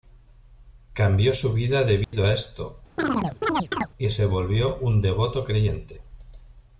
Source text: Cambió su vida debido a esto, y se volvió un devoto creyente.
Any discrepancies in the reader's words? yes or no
no